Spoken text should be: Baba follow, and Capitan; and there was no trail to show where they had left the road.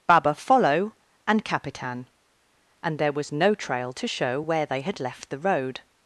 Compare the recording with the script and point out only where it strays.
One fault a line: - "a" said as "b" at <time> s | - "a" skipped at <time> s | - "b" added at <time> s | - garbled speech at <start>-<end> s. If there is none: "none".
none